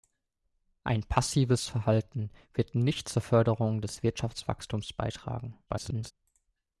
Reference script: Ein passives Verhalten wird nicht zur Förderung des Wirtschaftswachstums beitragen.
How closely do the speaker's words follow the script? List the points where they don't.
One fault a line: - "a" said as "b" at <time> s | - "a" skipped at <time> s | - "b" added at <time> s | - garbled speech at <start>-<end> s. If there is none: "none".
- garbled speech at 5.7-6.1 s